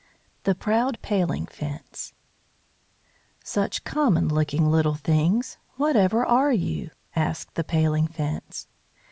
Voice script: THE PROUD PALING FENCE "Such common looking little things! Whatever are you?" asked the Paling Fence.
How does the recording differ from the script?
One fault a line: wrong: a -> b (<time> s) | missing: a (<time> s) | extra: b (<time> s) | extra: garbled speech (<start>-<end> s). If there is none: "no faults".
no faults